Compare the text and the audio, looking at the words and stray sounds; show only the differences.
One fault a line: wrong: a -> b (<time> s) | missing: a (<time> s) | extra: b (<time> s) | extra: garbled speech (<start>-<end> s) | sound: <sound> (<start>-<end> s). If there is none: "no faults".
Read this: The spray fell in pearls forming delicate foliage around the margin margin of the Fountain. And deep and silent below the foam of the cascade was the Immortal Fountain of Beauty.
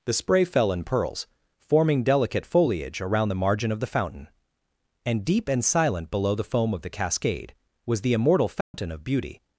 missing: margin (3.7 s)
sound: dropout (8.6-8.7 s)